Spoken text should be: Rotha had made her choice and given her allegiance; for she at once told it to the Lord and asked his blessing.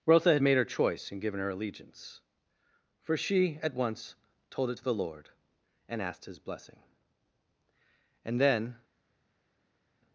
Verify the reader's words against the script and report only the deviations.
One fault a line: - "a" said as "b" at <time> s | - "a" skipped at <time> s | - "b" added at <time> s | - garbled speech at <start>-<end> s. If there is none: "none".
- "And then" added at 8.2 s